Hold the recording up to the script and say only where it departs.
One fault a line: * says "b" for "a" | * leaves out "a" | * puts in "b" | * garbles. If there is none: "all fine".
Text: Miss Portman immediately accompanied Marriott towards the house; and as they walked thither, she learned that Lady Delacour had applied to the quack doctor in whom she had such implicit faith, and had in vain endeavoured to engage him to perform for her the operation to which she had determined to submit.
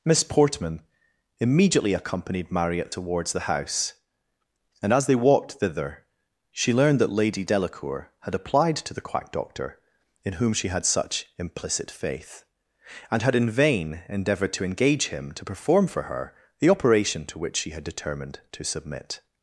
all fine